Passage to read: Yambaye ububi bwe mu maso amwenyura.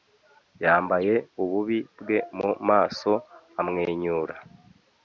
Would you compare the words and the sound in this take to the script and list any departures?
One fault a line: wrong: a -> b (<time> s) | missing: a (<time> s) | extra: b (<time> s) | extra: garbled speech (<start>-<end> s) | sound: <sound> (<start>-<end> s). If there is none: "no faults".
no faults